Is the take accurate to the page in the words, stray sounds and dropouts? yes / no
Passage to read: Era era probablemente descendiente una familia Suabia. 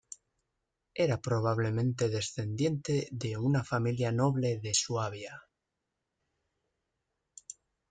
no